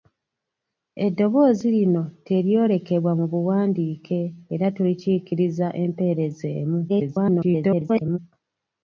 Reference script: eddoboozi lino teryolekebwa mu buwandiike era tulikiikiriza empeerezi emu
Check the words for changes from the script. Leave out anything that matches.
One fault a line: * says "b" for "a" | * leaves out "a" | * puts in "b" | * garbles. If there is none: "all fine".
* garbles